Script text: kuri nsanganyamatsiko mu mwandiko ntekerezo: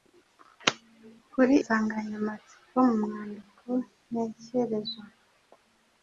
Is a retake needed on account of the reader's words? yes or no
no